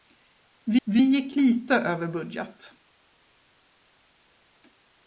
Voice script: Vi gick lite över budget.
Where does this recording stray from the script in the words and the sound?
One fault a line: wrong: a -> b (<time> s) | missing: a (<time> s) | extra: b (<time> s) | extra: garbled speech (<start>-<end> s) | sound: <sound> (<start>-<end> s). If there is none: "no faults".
extra: vi (0.8 s)